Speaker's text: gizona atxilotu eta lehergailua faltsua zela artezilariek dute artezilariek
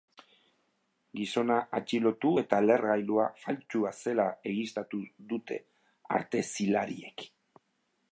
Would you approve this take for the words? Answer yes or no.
no